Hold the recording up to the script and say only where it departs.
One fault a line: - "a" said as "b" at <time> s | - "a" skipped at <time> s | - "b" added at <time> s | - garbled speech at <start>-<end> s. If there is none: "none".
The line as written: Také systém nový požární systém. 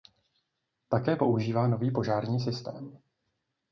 - "systém" said as "používá" at 1.1 s